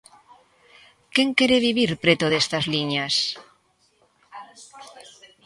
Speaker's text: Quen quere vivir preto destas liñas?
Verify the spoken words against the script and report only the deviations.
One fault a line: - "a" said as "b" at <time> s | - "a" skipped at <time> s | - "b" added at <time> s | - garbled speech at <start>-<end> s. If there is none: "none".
none